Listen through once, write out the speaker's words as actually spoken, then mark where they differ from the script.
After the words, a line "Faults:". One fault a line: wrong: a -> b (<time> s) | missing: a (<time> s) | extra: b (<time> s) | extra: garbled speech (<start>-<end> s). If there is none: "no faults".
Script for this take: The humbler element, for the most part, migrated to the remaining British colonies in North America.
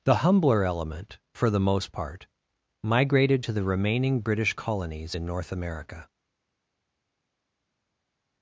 The humbler element, for the most part, migrated to the remaining British colonies in North America.
Faults:
no faults